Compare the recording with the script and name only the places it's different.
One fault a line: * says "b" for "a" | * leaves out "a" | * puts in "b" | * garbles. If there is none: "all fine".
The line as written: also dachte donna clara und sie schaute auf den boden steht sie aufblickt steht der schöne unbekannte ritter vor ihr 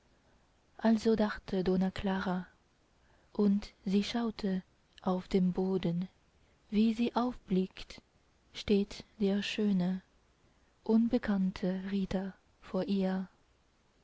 * says "wie" for "steht"